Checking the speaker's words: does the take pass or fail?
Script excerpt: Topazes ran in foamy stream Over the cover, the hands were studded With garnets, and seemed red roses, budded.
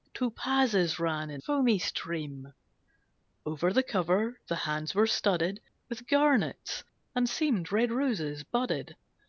pass